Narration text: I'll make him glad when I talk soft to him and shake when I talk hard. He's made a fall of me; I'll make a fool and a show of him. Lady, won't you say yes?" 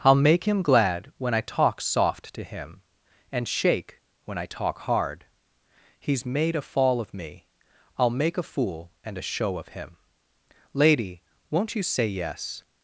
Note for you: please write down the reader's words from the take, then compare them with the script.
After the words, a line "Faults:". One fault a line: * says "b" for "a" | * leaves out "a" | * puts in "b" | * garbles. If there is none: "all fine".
I'll make him glad when I talk soft to him and shake when I talk hard. He's made a fall of me; I'll make a fool and a show of him. Lady, won't you say yes?"
Faults:
all fine